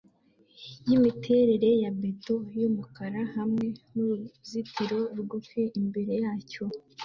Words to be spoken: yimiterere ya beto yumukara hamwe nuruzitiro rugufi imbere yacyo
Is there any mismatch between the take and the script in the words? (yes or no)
no